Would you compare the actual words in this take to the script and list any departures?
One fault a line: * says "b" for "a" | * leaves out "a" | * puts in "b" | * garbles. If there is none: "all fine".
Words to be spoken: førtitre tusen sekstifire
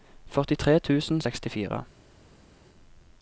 all fine